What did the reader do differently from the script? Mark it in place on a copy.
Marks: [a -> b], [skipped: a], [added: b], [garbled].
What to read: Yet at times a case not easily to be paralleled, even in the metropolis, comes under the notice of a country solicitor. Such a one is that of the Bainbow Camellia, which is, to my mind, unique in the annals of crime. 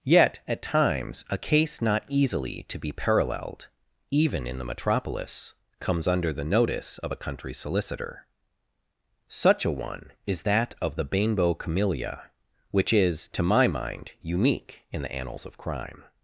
Yet at times a case not easily to be paralleled, even in the metropolis, comes under the notice of a country solicitor. Such a one is that of the Bainbow Camellia, which is, to my mind, unique in the annals of crime.